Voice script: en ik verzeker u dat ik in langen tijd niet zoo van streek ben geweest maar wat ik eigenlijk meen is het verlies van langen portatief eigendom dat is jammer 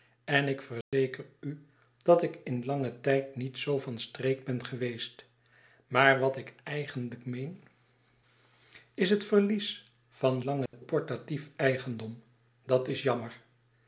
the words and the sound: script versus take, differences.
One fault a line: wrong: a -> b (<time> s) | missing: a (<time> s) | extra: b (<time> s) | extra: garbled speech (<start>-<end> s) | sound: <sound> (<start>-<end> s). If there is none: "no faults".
sound: dropout (0.8-0.9 s)
sound: dropout (10.7-10.7 s)